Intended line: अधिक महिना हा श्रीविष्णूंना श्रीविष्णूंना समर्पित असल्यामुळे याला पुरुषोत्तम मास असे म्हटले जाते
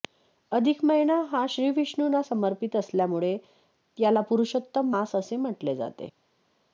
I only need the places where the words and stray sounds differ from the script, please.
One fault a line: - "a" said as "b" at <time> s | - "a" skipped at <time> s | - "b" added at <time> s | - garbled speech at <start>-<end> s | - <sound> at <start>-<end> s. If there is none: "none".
- "श्रीविष्णूंना" skipped at 2.2 s